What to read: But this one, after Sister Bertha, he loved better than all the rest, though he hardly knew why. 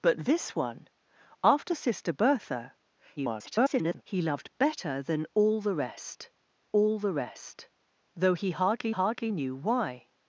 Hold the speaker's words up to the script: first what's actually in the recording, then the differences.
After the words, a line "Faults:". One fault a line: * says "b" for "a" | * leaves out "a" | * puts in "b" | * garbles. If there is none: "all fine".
But this one, after Sister Bertha, [garbled] he loved better than all the rest all the rest, though he hardly hardly knew why.
Faults:
* garbles
* puts in "all the rest"
* puts in "hardly"